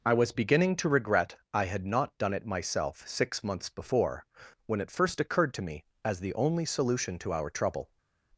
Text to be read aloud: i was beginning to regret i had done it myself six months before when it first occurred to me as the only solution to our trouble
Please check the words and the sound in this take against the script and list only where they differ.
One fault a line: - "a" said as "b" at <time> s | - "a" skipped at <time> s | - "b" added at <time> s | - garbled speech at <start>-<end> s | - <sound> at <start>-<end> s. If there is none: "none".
- "not" added at 1.9 s